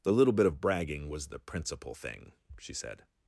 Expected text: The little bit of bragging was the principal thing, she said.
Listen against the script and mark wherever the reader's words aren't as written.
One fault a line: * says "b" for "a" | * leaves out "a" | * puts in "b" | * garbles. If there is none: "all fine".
all fine